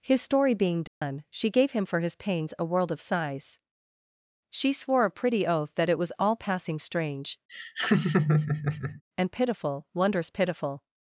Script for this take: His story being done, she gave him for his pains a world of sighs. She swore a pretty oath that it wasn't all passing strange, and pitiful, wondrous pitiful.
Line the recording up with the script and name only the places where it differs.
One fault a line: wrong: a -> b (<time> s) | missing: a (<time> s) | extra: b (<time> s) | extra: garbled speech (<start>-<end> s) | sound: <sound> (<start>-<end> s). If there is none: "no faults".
sound: dropout (0.9-1.0 s)
wrong: wasn't -> was (6.0 s)
sound: laugh (7.5-9.0 s)